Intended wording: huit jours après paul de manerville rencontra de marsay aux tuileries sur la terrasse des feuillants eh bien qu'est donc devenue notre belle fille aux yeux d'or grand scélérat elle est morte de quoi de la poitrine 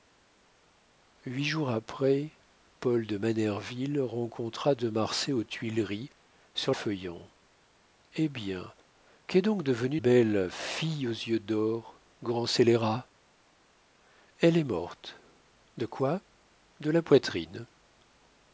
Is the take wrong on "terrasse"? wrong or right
wrong